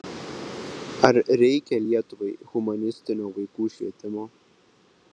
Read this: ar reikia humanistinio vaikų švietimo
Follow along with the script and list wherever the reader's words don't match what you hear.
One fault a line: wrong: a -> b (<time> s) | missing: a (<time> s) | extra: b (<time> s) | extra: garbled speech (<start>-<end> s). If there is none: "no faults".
extra: lietuvai (1.8 s)